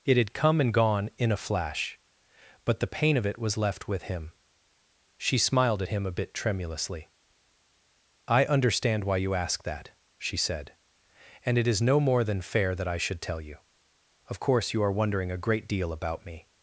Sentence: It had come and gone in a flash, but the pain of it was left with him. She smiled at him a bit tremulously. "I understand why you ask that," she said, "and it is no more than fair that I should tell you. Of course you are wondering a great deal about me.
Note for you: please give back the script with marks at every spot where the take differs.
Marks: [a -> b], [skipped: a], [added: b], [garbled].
It had come and gone in a flash, but the pain of it was left with him. She smiled at him a bit tremulously. "I understand why you ask that," she said, "and it is no more than fair that I should tell you. Of course you are wondering a great deal about me.